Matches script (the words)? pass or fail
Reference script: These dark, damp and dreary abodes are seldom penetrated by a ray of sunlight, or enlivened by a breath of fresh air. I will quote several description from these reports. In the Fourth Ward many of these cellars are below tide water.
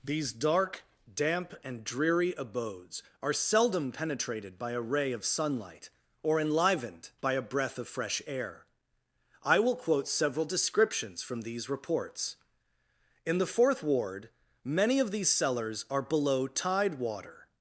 fail